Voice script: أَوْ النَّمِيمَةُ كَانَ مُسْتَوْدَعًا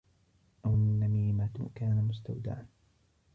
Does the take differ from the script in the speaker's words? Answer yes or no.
no